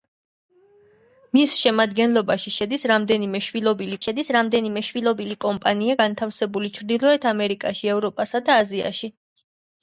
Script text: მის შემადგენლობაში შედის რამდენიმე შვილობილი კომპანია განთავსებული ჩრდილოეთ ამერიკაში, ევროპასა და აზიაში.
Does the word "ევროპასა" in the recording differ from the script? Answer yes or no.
no